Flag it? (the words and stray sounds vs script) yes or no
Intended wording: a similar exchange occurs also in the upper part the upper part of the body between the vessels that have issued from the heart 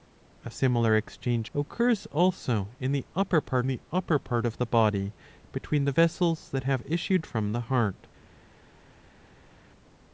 no